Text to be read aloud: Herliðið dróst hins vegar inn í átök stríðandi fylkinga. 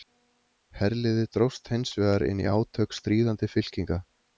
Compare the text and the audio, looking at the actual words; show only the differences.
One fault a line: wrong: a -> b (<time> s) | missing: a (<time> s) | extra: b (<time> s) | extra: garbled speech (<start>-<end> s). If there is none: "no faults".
no faults